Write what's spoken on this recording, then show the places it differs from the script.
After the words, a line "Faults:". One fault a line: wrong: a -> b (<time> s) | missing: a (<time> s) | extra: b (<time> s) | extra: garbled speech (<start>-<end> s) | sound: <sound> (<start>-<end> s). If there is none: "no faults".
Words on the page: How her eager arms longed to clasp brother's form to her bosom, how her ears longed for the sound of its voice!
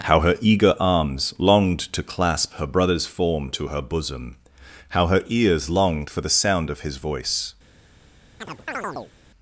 How her eager arms longed to clasp her brother's form to her bosom, how her ears longed for the sound of his voice!
Faults:
extra: her (2.5 s)
wrong: its -> his (6.8 s)
sound: chirp (8.4-9.1 s)